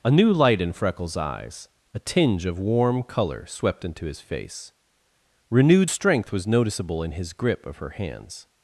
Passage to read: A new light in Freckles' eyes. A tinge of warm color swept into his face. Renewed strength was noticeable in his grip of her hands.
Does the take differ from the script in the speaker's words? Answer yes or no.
no